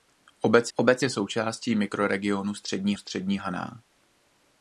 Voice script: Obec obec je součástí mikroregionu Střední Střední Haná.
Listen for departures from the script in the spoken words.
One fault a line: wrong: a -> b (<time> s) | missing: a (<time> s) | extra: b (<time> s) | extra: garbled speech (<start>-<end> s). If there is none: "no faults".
no faults